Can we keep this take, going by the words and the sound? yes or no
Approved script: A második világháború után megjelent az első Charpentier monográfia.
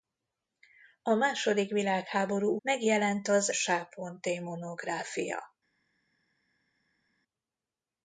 no